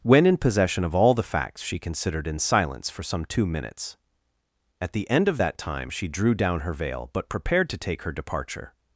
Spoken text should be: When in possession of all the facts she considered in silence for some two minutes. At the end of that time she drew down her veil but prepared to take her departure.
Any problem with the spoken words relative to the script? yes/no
no